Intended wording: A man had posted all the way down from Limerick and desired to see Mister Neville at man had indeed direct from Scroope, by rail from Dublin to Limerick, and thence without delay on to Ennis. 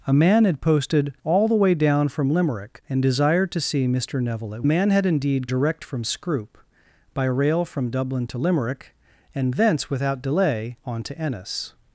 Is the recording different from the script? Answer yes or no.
no